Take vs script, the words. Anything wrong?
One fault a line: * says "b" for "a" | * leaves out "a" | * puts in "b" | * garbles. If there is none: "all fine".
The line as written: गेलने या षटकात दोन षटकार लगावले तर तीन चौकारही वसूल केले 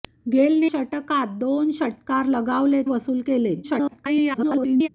* leaves out "या"
* leaves out "तर तीन चौकारही"
* garbles